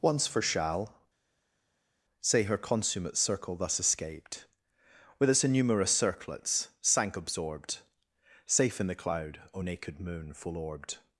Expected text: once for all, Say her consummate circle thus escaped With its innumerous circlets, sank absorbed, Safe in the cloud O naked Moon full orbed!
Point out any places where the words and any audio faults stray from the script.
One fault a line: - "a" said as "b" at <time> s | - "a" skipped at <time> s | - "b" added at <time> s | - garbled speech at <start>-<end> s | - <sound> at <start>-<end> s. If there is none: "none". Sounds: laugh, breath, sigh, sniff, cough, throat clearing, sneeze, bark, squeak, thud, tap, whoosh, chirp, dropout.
- "all" said as "shall" at 0.4 s